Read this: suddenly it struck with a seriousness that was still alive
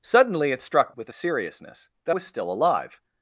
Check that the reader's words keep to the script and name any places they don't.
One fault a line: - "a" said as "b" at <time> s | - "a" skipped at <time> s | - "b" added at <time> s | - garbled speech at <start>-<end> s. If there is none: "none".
none